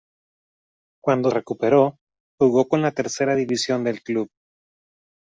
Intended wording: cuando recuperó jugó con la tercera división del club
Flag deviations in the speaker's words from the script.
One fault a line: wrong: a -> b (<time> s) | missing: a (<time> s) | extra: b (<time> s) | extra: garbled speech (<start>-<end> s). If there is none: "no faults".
no faults